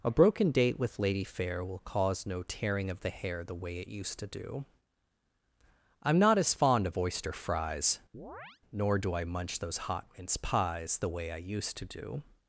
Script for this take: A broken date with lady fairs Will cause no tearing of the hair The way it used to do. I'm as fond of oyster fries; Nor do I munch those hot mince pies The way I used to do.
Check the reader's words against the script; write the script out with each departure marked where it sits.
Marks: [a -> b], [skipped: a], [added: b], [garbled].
A broken date with lady [fairs -> fair] Will cause no tearing of the hair The way it used to do. I'm [added: not] as fond of oyster fries; Nor do I munch those hot mince pies The way I used to do.